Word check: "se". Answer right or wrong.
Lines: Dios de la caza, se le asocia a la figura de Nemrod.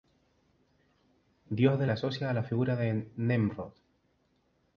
wrong